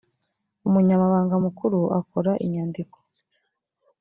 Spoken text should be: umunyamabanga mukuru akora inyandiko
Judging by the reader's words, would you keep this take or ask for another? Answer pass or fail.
pass